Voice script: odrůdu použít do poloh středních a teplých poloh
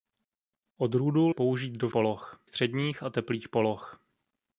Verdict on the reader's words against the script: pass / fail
pass